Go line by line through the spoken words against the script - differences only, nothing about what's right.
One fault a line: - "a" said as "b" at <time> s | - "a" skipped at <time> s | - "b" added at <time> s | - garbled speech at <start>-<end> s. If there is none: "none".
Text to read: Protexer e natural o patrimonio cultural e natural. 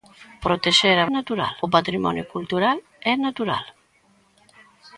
none